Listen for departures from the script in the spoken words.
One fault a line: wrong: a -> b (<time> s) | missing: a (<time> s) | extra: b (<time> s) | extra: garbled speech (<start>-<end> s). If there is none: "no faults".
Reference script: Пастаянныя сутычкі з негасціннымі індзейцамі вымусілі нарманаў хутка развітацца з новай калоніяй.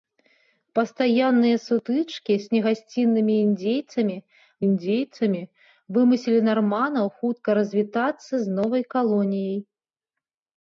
extra: індзейцамі (4.7 s)